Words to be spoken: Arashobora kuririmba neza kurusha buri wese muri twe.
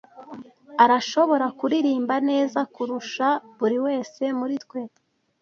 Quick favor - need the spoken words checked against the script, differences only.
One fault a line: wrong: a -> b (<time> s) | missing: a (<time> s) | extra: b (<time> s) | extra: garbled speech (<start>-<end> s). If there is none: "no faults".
no faults